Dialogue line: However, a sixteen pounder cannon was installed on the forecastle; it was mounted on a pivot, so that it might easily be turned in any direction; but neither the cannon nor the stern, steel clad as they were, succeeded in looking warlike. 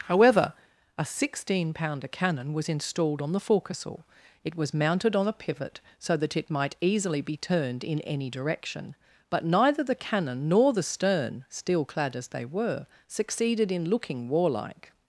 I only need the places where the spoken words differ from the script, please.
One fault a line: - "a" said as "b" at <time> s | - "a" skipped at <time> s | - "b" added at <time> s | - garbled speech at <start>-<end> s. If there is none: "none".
none